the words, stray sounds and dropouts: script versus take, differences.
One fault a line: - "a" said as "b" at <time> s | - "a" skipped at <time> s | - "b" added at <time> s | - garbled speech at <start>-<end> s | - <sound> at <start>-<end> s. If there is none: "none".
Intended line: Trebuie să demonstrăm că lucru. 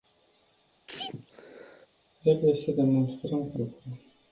- sneeze at 0.9-1.9 s